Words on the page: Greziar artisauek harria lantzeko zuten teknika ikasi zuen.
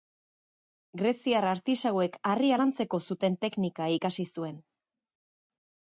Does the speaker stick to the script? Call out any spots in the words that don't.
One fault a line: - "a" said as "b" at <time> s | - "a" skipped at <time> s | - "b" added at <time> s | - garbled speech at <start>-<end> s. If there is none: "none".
none